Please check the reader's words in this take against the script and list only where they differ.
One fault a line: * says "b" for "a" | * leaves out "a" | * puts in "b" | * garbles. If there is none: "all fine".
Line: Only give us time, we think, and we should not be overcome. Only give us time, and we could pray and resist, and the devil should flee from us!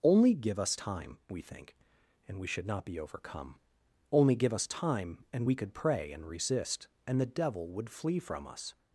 * says "would" for "should"